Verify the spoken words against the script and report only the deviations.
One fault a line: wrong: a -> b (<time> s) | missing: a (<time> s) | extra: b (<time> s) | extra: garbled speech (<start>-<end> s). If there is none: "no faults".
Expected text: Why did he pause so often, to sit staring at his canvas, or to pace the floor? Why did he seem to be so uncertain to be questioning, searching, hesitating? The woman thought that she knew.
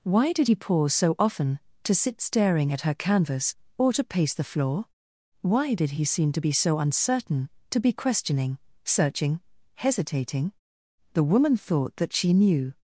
wrong: his -> her (2.8 s)